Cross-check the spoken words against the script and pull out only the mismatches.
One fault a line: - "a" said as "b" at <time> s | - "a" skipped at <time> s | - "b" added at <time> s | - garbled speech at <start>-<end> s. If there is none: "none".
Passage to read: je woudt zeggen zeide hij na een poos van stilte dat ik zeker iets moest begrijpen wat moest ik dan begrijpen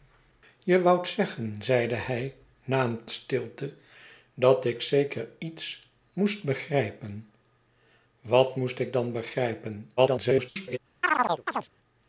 - "poos van" skipped at 3.0 s
- garbled speech at 10.0-10.8 s